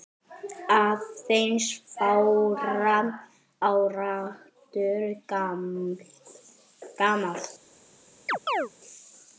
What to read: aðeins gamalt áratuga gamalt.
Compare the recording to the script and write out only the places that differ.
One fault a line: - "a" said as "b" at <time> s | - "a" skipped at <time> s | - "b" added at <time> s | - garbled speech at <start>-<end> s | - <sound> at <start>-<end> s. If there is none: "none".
- "gamalt" said as "fárra" at 1.9 s
- chirp at 8.3-8.7 s